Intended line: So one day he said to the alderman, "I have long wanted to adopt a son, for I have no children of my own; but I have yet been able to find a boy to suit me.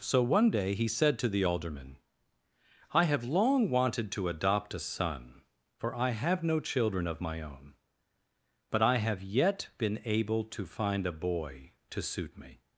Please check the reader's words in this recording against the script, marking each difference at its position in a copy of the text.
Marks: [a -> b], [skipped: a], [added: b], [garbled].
So one day he said to the alderman, "I have long wanted to adopt a son, for I have no children of my own; but I have yet been able to find a boy to suit me.